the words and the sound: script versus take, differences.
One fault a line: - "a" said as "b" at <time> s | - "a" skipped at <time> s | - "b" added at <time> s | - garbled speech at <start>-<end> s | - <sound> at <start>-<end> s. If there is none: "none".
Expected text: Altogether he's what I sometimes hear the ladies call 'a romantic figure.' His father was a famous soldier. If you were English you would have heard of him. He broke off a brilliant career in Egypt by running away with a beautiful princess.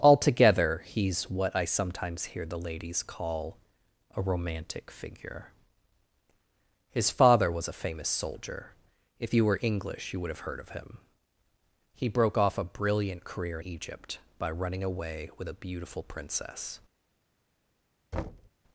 - "in" skipped at 13.6 s
- thud at 18.1-18.5 s